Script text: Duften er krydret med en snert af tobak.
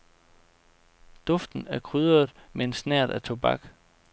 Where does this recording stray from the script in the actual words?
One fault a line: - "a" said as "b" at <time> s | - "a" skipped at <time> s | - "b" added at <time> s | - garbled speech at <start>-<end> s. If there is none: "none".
none